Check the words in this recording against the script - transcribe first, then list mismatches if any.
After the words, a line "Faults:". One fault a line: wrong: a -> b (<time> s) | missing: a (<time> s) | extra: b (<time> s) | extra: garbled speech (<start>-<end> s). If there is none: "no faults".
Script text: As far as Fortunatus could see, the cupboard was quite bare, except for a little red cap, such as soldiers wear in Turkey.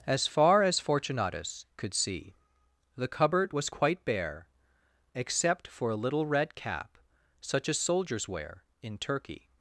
As far as Fortunatus could see, the cupboard was quite bare, except for a little red cap, such as soldiers wear in Turkey.
Faults:
no faults